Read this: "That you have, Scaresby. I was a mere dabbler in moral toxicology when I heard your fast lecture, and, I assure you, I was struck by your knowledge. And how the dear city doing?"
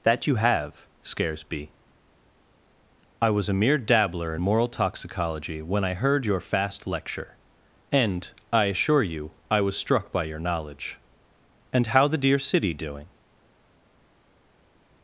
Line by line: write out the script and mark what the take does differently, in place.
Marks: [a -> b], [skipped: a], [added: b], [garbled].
"That you have, Scaresby. I was a mere dabbler in moral toxicology when I heard your fast lecture, and, I assure you, I was struck by your knowledge. And how the dear city doing?"